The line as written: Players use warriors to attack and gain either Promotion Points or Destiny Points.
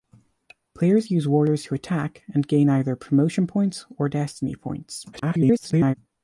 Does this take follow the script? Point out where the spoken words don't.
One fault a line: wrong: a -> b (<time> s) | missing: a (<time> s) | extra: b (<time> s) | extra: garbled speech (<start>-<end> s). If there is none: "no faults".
extra: garbled speech (5.1-5.9 s)